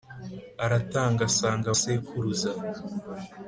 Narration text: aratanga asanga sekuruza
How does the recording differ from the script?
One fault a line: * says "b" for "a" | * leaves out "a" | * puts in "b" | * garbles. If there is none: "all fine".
all fine